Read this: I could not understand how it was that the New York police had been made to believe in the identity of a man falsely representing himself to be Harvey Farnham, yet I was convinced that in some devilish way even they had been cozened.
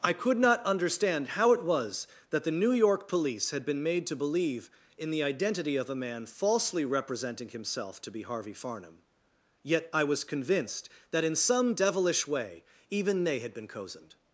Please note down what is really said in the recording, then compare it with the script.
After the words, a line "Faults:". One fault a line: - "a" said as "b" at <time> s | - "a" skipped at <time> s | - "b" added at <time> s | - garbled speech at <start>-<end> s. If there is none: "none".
I could not understand how it was that the New York police had been made to believe in the identity of a man falsely representing himself to be Harvey Farnham, yet I was convinced that in some devilish way even they had been cozened.
Faults:
none